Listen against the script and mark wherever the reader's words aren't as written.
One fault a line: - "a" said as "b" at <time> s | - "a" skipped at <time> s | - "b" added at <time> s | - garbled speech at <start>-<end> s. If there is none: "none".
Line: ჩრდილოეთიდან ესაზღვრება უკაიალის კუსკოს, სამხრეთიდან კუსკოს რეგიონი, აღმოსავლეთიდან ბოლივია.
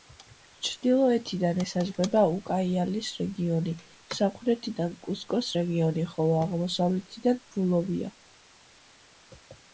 - "კუსკოს" said as "რეგიონი" at 3.2 s
- "ხოლო" added at 6.2 s